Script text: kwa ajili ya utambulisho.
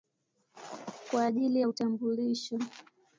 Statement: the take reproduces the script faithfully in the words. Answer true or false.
true